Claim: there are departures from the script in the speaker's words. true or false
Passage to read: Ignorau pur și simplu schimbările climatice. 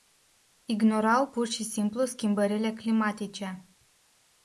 false